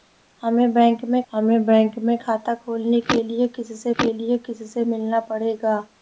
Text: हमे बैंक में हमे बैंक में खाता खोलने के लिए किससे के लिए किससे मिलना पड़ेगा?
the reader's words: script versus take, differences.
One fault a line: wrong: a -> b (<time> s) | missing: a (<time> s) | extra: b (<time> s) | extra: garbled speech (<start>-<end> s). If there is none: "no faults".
no faults